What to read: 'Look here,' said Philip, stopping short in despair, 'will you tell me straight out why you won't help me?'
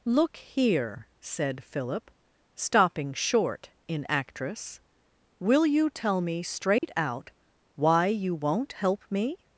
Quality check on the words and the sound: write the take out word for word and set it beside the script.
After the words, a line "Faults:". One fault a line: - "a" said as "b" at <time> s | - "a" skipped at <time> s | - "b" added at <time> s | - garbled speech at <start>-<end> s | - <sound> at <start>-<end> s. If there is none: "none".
'Look here,' said Philip, stopping short in actress, 'will you tell me straight out why you won't help me?'
Faults:
- "despair" said as "actress" at 4.1 s
- dropout at 6.8-6.8 s